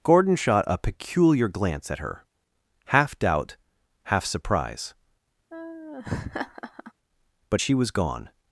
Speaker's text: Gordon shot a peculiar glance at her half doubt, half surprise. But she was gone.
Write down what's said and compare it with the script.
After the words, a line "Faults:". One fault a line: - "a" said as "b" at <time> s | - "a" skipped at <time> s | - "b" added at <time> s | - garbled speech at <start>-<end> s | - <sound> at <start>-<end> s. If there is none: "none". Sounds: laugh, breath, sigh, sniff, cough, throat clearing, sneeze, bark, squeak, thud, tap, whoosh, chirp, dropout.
Gordon shot a peculiar glance at her half doubt, half surprise. But she was gone.
Faults:
- laugh at 5.5-6.9 s